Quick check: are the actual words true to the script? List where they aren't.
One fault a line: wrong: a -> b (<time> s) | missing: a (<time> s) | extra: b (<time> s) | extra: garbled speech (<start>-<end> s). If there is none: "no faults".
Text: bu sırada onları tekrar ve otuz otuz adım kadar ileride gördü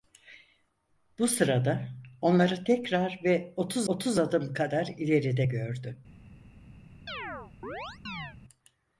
no faults